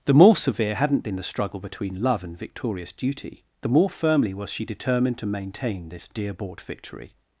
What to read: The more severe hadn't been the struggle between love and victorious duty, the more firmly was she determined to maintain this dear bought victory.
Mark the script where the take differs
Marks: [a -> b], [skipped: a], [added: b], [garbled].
The more severe hadn't been the struggle between love and victorious duty, the more firmly was she determined to maintain this dear bought victory.